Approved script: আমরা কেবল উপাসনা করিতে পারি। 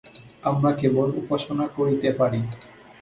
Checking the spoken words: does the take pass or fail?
pass